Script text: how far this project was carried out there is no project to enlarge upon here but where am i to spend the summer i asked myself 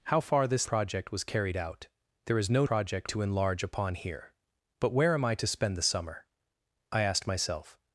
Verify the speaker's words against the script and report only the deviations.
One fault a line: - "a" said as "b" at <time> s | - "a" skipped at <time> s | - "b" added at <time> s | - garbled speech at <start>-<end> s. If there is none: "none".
none